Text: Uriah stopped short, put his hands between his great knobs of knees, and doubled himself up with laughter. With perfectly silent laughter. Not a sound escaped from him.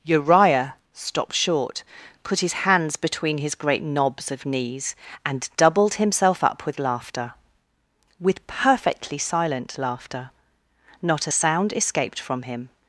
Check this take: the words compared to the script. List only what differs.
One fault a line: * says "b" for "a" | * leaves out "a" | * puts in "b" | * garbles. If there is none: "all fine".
all fine